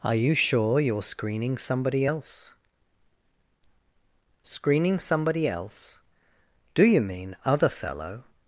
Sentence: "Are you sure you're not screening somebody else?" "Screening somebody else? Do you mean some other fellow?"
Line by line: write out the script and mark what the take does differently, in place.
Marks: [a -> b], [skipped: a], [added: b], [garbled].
"Are you sure you're [skipped: not] screening somebody else?" "Screening somebody else? Do you mean [skipped: some] other fellow?"